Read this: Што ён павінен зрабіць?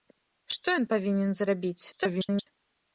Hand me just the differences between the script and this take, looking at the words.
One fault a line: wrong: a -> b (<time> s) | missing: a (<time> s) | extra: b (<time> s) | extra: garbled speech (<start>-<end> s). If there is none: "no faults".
extra: garbled speech (1.9-2.5 s)